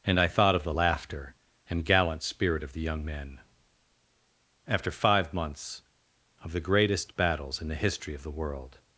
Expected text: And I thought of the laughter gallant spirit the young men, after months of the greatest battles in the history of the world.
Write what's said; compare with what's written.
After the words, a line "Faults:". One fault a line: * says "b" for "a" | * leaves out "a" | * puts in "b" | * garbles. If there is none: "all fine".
And I thought of the laughter and gallant spirit of the young men, after five months of the greatest battles in the history of the world.
Faults:
* puts in "and"
* puts in "of"
* puts in "five"